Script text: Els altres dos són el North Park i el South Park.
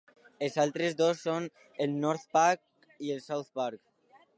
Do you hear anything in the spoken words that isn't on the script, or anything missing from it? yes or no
no